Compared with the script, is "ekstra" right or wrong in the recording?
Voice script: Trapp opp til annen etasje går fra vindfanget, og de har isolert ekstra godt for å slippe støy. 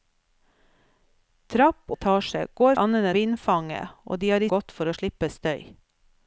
wrong